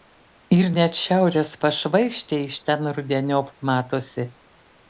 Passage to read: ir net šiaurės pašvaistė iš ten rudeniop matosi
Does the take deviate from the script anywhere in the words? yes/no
no